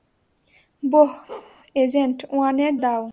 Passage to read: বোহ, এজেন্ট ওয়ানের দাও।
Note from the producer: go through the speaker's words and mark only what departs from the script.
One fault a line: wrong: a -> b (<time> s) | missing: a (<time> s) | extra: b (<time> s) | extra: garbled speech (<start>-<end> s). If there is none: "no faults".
no faults